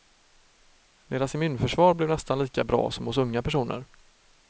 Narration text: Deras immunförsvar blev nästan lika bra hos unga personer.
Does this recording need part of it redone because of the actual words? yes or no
yes